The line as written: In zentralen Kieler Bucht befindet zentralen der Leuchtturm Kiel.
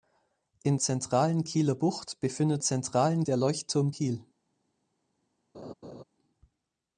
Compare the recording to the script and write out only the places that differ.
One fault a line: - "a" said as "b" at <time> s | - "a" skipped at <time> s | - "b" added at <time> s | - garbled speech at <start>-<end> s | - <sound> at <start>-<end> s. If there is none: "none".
- laugh at 5.5-6.0 s